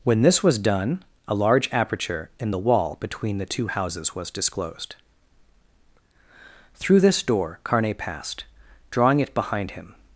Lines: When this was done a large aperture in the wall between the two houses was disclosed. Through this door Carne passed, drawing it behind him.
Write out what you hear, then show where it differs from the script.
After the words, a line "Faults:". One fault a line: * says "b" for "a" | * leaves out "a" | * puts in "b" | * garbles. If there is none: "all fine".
When this was done a large aperture in the wall between the two houses was disclosed. Through this door Carne passed, drawing it behind him.
Faults:
all fine